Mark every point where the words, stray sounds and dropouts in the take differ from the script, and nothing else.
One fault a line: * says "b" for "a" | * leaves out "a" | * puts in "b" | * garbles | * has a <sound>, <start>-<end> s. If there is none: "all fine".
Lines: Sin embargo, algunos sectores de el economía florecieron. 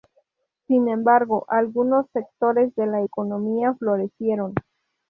* says "la" for "el"